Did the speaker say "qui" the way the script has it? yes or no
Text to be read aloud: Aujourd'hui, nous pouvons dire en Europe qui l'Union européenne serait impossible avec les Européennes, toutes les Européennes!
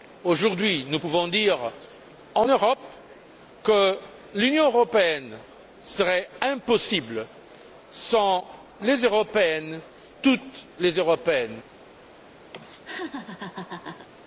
no